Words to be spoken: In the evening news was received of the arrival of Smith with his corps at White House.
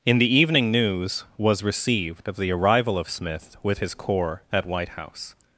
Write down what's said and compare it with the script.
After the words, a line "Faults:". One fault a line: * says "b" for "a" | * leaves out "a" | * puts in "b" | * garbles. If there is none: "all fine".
In the evening news was received of the arrival of Smith with his corps at White House.
Faults:
all fine